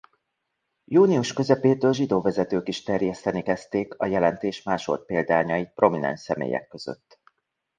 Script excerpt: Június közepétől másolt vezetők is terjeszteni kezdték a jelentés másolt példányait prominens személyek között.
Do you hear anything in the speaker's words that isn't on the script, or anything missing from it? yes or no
yes